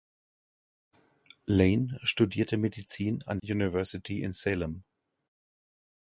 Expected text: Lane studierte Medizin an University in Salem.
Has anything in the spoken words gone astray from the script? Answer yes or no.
no